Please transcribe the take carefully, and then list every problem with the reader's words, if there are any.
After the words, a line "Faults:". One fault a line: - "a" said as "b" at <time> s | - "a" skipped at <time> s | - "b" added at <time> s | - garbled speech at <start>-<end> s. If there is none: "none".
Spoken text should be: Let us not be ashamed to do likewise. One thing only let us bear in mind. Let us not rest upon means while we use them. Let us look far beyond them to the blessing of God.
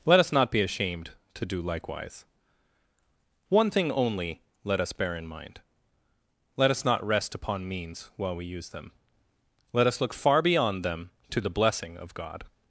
Let us not be ashamed to do likewise. One thing only let us bear in mind. Let us not rest upon means while we use them. Let us look far beyond them to the blessing of God.
Faults:
none